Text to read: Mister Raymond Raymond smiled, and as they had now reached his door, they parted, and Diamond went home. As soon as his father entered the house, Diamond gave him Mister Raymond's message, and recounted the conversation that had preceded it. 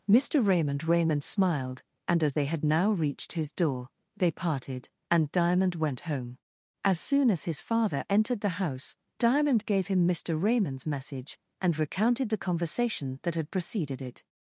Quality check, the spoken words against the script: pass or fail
pass